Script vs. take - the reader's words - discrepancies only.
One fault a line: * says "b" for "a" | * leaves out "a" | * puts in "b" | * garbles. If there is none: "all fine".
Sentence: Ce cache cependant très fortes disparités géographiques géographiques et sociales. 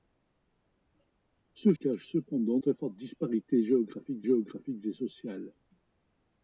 all fine